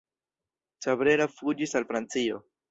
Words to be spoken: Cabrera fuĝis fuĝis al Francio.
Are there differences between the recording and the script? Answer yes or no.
yes